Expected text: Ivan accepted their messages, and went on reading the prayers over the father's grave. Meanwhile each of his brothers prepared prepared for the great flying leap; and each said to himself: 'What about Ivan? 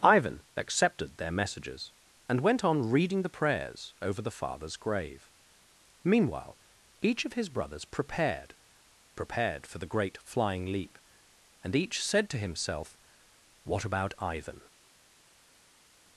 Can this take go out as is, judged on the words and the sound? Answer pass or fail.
pass